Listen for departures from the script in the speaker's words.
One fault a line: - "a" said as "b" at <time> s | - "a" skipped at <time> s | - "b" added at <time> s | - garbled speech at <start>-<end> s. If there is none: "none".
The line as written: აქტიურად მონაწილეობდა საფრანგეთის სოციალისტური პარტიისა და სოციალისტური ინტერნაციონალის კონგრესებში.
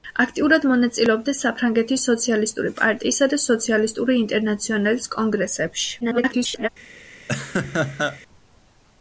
- garbled speech at 6.0-6.7 s